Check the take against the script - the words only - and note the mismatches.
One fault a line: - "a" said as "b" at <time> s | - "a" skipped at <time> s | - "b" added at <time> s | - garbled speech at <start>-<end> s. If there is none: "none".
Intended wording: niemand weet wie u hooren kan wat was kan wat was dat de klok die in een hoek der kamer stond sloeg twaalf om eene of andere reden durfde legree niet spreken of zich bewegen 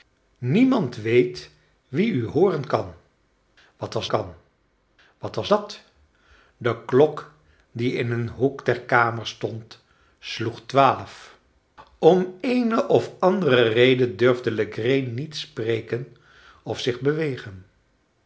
none